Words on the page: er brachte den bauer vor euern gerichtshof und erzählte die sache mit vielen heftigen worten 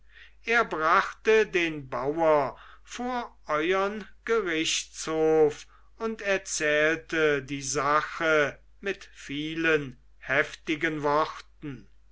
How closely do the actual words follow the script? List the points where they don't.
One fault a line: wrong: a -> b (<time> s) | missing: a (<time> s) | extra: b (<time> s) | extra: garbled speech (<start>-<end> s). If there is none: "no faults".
no faults